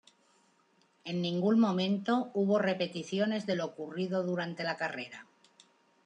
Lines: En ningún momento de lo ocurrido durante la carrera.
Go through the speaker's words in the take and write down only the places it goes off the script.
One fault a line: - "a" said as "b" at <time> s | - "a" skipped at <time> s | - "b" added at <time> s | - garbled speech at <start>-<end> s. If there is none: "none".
- "hubo repeticiones" added at 2.3 s